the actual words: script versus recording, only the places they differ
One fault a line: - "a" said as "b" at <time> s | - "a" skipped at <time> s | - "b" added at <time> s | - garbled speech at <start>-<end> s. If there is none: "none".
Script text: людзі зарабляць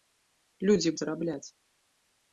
none